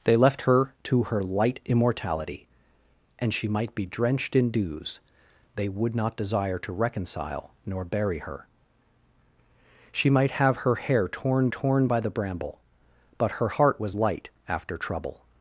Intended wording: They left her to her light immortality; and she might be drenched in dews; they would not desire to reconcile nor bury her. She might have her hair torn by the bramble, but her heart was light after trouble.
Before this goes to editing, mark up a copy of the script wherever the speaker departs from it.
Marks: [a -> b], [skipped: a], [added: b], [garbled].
They left her to her light immortality; and she might be drenched in dews; they would not desire to reconcile nor bury her. She might have her hair torn [added: torn] by the bramble, but her heart was light after trouble.